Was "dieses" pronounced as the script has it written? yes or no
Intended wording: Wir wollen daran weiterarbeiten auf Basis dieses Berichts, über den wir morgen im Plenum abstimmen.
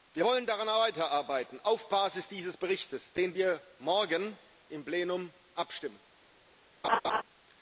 yes